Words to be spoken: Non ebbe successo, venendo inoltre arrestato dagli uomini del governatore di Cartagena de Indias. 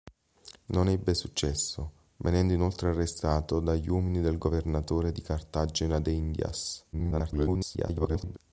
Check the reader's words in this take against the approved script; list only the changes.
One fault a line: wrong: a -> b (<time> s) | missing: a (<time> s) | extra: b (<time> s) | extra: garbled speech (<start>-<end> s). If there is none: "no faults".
extra: garbled speech (6.9-8.4 s)